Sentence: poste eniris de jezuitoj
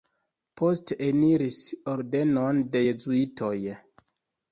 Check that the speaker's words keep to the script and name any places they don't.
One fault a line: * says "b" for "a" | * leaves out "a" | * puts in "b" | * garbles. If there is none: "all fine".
* puts in "ordenon"